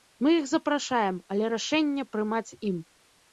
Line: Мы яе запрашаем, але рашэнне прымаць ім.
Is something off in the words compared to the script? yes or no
yes